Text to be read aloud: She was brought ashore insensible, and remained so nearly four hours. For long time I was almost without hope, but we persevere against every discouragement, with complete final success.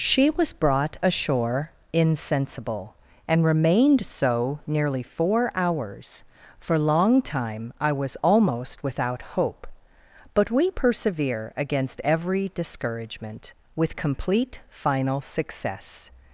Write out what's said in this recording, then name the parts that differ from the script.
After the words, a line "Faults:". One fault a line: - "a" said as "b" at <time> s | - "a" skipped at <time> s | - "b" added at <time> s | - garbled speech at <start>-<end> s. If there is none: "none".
She was brought ashore insensible, and remained so nearly four hours. For long time I was almost without hope, but we persevere against every discouragement, with complete final success.
Faults:
none